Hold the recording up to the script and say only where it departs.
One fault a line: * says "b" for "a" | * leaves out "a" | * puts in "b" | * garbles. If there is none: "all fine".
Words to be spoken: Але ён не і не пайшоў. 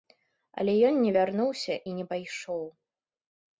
* puts in "вярнуўся"